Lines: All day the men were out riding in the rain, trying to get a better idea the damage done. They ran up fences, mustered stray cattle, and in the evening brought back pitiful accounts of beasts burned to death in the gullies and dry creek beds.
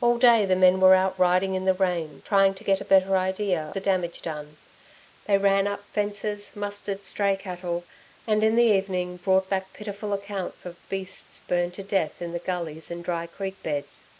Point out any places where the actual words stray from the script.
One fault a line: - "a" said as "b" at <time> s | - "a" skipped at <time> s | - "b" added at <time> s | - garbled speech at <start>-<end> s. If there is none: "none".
none